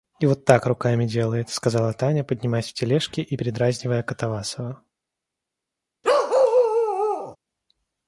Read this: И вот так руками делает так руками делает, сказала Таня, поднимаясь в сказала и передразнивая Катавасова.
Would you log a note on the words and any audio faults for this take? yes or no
yes